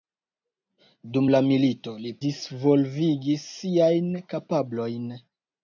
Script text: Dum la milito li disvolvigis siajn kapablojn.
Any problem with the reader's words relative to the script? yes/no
no